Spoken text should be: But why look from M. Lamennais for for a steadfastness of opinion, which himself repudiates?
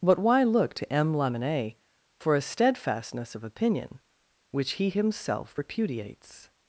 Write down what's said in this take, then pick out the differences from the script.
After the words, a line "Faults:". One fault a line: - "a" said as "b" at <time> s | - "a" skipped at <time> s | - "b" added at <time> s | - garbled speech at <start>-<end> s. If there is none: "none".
But why look to M. Lamennais for a steadfastness of opinion, which he himself repudiates?
Faults:
- "from" said as "to" at 0.8 s
- "for" skipped at 2.4 s
- "he" added at 4.7 s